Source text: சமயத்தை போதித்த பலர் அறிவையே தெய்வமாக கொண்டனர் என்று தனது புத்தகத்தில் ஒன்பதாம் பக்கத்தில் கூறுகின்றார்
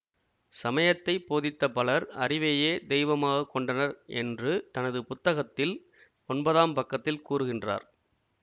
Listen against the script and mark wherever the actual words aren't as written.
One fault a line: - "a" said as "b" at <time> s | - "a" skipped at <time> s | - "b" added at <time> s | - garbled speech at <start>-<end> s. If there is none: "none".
none